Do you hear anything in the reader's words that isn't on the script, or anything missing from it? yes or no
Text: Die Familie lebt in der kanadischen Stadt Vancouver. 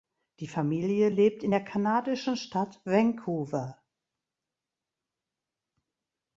no